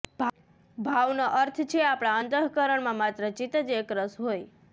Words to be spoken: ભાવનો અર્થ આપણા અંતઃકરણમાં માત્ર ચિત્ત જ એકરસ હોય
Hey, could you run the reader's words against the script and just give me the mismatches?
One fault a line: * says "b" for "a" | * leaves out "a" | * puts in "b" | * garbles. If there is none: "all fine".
* puts in "છે"